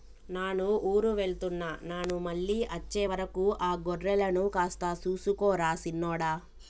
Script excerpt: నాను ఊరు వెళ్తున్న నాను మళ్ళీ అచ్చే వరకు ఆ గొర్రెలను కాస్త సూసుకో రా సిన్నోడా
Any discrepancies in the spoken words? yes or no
no